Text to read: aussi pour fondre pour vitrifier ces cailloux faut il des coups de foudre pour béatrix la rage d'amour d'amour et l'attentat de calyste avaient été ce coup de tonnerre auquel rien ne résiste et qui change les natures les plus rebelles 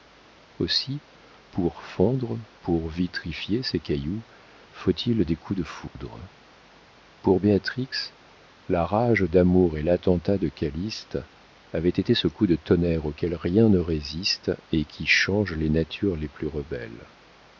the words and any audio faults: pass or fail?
fail